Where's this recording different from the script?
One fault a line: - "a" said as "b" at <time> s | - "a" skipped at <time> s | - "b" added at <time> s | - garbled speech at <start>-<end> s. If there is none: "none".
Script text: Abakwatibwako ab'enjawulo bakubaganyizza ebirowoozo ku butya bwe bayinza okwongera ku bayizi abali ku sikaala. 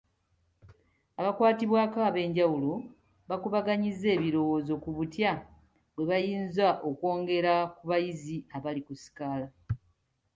none